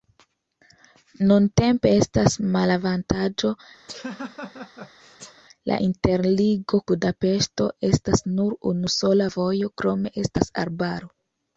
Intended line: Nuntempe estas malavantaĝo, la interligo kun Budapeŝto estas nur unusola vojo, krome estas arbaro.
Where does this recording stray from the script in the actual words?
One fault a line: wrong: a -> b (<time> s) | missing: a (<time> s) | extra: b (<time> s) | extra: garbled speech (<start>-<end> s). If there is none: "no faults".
missing: kun (6.8 s)